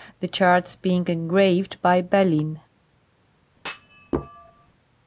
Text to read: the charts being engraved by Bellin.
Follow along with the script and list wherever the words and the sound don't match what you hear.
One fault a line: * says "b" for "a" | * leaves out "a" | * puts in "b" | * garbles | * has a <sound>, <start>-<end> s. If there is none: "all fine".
* has a thud, 3.5-4.7 s